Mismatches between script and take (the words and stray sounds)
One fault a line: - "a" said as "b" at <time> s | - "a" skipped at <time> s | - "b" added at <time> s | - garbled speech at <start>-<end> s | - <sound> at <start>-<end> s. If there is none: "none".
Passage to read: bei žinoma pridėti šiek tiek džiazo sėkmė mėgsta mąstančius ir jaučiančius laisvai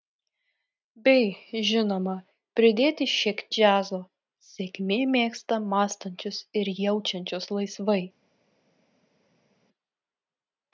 - "tiek" skipped at 3.4 s